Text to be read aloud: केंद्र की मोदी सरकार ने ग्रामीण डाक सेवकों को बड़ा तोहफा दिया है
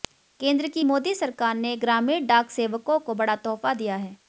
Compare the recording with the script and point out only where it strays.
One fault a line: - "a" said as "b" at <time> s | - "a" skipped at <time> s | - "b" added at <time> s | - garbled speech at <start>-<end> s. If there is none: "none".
none